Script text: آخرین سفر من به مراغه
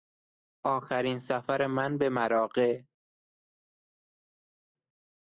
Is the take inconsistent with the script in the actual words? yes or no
no